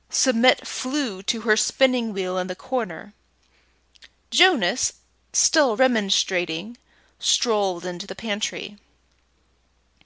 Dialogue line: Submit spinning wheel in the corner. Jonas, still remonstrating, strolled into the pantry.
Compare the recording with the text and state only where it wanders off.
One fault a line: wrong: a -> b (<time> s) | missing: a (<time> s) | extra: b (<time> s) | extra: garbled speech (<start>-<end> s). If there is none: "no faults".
extra: flew to her (0.7 s)